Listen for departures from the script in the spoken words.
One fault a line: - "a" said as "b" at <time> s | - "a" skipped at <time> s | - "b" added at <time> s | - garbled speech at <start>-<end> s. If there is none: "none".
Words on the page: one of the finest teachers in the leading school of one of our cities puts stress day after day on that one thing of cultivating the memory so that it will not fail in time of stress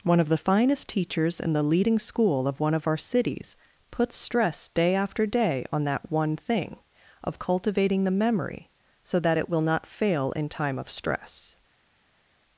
none